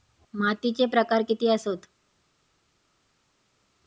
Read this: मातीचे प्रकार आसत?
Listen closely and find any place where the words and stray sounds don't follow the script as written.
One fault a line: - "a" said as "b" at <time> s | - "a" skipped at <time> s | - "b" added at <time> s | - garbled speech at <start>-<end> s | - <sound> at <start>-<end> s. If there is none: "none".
- "किती" added at 1.3 s